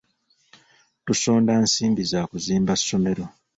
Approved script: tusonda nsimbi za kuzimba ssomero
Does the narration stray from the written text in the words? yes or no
no